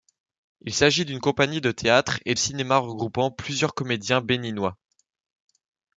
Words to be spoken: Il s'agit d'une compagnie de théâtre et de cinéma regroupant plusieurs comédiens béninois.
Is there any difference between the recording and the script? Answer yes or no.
yes